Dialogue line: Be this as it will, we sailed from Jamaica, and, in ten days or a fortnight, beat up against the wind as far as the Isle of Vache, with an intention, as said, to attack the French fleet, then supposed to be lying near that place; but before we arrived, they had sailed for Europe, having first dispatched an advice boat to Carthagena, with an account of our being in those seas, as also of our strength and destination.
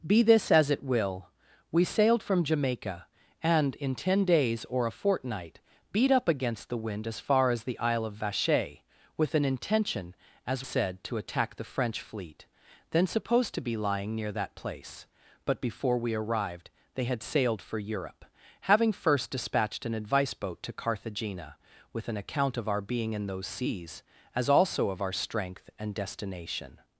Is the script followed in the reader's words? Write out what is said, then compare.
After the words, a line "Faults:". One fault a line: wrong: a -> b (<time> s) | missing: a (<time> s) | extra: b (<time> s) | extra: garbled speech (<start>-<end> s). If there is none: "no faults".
Be this as it will, we sailed from Jamaica, and, in ten days or a fortnight, beat up against the wind as far as the Isle of Vache, with an intention, as said, to attack the French fleet, then supposed to be lying near that place; but before we arrived, they had sailed for Europe, having first dispatched an advice boat to Carthagena, with an account of our being in those seas, as also of our strength and destination.
Faults:
no faults